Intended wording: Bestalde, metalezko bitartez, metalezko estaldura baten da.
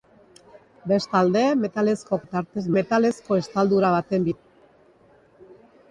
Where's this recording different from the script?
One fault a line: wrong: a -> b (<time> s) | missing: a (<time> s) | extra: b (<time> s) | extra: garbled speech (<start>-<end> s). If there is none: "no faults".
no faults